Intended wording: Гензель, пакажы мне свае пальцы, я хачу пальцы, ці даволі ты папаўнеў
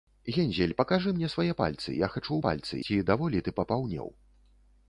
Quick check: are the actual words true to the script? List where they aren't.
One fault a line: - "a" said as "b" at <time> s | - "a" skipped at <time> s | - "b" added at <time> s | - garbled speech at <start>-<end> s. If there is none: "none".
none